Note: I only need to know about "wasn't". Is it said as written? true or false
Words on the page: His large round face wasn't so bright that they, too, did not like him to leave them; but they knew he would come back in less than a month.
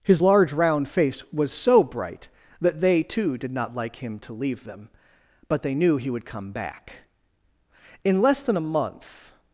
false